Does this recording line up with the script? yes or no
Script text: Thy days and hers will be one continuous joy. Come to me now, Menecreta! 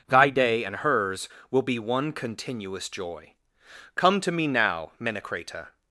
no